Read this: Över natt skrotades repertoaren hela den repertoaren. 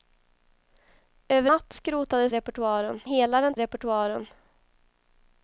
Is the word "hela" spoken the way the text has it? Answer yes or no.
yes